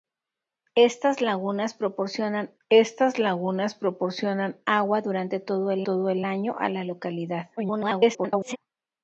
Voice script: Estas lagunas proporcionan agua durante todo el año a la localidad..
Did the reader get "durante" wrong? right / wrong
right